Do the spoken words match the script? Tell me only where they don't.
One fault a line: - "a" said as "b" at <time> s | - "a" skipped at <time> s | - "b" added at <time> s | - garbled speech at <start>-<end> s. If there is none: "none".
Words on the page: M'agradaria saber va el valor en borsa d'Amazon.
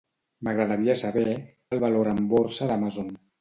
none